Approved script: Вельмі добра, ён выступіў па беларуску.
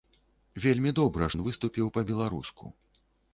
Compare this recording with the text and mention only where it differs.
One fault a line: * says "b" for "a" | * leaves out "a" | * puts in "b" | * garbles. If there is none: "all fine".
all fine